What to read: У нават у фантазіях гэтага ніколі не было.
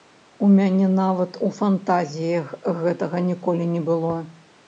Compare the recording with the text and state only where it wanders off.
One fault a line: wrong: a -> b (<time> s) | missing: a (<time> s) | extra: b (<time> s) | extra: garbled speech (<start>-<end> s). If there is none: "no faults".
extra: мяне (0.5 s)